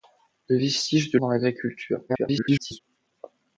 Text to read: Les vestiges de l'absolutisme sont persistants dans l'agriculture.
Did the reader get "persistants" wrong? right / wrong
wrong